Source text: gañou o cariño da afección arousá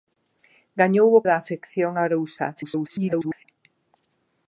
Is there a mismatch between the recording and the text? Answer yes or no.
yes